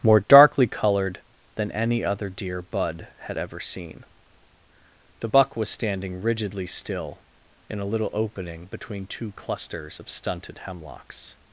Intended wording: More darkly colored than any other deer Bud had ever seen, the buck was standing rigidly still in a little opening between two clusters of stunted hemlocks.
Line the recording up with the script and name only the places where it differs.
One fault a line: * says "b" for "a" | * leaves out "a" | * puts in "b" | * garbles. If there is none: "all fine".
all fine